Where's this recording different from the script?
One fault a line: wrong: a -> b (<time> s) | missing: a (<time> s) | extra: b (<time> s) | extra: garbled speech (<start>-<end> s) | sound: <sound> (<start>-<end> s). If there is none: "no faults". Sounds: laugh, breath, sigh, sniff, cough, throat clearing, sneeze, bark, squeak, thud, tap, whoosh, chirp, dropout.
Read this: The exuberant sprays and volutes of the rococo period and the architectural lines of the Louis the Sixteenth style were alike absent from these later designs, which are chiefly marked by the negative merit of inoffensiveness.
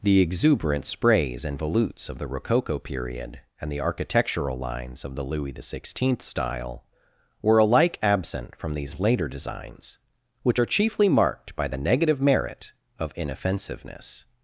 no faults